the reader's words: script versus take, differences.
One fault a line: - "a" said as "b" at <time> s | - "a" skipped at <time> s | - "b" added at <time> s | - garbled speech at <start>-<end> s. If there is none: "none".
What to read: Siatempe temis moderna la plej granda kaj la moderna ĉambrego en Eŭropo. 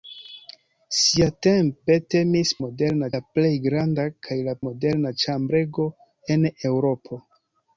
none